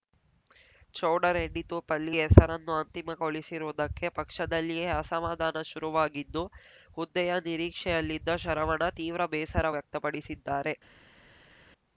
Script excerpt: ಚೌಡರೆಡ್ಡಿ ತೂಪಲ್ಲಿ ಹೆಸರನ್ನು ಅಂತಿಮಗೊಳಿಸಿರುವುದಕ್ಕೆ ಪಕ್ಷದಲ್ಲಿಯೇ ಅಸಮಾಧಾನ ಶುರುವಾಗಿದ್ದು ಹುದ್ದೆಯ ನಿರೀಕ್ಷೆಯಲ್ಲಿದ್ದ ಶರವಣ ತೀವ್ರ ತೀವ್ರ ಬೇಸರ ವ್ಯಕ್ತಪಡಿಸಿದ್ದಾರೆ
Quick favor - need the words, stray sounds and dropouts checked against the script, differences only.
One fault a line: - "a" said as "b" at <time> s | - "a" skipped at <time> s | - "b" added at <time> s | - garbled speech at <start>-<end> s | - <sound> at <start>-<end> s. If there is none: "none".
- "ತೀವ್ರ" skipped at 9.2 s